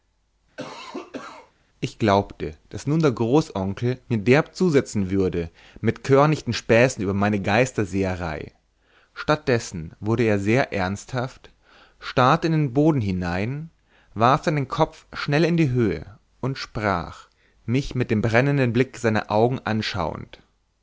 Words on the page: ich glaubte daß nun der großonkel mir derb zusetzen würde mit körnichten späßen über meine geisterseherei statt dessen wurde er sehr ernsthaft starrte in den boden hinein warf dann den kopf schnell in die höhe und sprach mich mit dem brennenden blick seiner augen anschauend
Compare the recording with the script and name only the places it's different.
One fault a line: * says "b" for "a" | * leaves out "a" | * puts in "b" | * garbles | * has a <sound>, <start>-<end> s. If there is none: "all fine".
* has a cough, 0.6-1.5 s